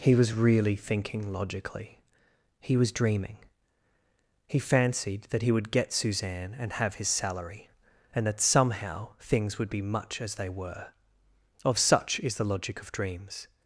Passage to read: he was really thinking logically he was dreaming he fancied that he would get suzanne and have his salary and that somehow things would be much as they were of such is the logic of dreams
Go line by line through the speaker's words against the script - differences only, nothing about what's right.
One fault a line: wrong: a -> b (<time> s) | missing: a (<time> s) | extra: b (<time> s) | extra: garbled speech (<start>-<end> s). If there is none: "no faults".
no faults